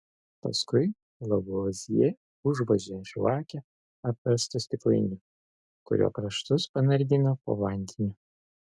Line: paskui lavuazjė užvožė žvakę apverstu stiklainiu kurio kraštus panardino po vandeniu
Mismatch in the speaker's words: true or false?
false